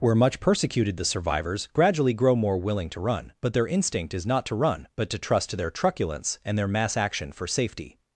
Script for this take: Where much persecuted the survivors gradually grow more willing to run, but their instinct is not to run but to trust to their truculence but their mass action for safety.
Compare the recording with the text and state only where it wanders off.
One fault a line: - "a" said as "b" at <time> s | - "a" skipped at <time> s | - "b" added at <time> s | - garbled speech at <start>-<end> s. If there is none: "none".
- "but" said as "and" at 6.4 s